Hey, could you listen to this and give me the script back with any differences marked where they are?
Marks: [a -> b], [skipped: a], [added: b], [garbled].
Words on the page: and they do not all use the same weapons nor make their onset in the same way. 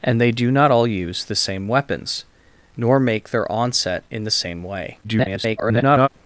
and they do not all use the same weapons nor make their onset in the same way. [garbled]